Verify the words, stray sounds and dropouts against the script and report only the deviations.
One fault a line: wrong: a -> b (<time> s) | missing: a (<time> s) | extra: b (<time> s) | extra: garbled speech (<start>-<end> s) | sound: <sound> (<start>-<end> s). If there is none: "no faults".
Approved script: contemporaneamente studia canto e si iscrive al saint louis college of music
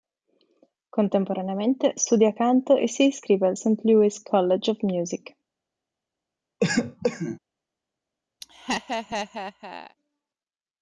sound: cough (6.6-7.4 s)
sound: laugh (8.4-10.0 s)